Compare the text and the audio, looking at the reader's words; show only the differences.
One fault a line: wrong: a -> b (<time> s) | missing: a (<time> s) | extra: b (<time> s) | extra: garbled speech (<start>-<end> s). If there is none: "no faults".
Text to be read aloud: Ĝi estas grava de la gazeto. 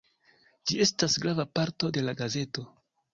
extra: parto (1.6 s)